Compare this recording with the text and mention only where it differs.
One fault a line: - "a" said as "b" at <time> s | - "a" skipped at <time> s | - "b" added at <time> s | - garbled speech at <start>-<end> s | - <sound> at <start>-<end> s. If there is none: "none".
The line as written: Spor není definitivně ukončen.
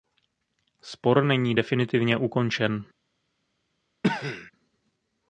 - cough at 4.0-4.5 s